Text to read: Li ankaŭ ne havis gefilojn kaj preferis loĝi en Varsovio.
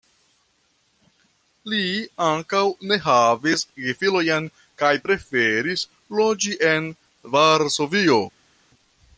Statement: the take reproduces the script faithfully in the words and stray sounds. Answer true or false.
true